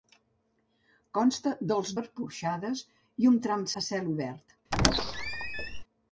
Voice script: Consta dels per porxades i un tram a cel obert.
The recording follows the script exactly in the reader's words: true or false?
true